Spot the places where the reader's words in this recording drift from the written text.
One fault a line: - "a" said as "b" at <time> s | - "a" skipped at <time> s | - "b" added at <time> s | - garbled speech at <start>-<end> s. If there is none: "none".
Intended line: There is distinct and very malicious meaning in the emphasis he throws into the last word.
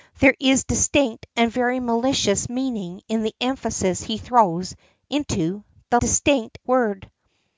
- "last" said as "distinct" at 6.0 s